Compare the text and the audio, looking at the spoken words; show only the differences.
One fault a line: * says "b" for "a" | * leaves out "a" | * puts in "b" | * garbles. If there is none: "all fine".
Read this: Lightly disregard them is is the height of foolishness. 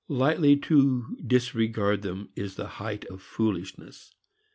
* puts in "to"
* leaves out "is"